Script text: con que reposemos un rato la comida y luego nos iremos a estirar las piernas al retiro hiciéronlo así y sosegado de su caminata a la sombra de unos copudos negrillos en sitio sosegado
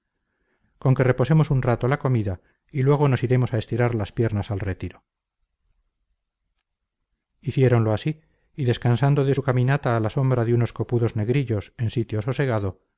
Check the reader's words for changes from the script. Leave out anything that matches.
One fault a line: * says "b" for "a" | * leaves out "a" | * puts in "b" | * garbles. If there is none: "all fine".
* says "descansando" for "sosegado"